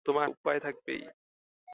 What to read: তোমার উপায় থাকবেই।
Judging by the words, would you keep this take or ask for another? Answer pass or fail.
pass